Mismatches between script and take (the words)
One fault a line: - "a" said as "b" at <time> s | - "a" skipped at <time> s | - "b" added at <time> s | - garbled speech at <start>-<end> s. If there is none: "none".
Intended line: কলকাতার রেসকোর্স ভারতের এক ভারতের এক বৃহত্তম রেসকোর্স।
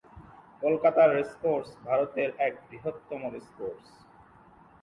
- "ভারতের এক" skipped at 2.5 s